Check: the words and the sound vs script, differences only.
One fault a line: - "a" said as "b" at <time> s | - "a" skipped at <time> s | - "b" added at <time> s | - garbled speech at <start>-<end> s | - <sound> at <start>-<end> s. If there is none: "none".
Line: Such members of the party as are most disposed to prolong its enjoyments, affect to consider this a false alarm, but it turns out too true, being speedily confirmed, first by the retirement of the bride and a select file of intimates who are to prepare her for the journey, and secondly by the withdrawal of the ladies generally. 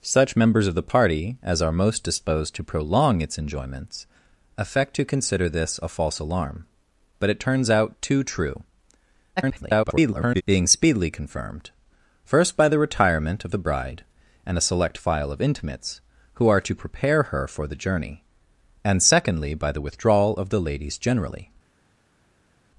- garbled speech at 9.4-10.4 s